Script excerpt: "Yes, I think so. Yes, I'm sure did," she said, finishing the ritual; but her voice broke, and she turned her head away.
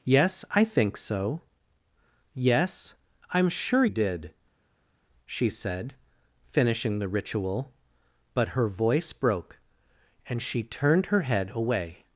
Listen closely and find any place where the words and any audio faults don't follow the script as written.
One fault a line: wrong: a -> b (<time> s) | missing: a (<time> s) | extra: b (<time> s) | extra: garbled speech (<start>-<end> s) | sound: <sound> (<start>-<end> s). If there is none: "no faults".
no faults